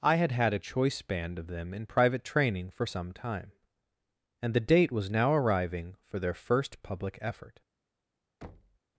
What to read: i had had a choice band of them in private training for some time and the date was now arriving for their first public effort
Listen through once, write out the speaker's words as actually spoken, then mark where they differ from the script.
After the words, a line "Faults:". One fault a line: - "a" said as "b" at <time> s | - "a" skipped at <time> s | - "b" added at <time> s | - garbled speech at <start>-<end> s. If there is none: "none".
i had had a choice band of them in private training for some time and the date was now arriving for their first public effort
Faults:
none